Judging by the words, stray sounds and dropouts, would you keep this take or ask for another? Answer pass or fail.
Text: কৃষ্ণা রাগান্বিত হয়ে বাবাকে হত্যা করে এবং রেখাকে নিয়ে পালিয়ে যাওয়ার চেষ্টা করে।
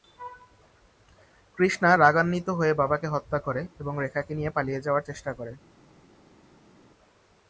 pass